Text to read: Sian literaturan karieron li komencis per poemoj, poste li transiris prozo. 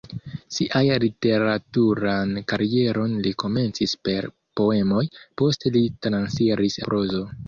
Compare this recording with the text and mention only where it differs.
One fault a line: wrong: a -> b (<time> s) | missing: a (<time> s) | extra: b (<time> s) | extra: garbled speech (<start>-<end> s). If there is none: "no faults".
no faults